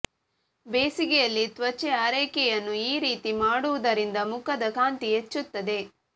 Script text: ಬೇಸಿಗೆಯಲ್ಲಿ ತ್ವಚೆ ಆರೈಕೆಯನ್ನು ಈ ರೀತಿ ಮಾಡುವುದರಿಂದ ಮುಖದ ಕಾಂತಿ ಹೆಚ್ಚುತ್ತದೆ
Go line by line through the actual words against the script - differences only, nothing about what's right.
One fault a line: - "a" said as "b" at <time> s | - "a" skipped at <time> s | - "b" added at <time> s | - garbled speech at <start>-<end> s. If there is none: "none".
none